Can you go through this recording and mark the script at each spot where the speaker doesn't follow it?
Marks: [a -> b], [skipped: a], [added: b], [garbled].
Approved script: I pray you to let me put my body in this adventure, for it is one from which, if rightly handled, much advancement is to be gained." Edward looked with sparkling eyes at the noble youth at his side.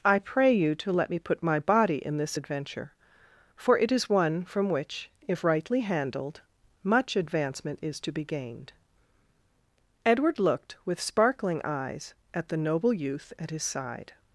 I pray you to let me put my body in this adventure, for it is one from which, if rightly handled, much advancement is to be gained." Edward looked with sparkling eyes at the noble youth at his side.